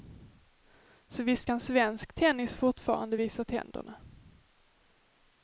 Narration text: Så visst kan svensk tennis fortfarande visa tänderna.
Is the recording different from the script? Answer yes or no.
no